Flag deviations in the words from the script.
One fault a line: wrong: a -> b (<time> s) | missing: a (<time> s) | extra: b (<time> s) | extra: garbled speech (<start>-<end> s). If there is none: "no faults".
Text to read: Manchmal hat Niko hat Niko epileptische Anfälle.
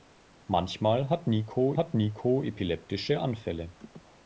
no faults